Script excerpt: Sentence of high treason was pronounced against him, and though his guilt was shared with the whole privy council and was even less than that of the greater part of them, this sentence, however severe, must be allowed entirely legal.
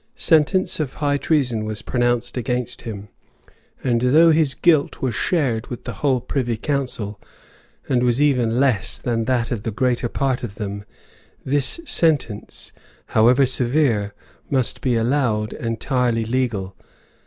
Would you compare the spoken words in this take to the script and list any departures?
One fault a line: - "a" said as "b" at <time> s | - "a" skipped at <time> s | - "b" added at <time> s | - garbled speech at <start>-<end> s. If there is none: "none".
none